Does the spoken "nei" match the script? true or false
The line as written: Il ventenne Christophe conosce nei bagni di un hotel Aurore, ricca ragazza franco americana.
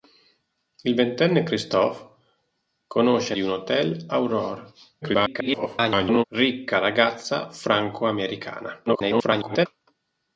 false